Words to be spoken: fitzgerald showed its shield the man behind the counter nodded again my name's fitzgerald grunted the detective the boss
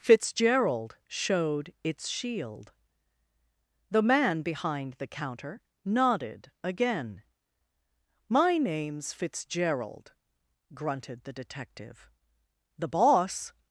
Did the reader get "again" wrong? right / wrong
right